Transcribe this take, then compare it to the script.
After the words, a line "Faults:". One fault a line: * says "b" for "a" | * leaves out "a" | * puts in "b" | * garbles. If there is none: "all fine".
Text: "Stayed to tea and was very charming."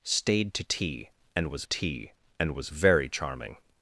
"Stayed to tea and was tea and was very charming."
Faults:
* puts in "tea and was"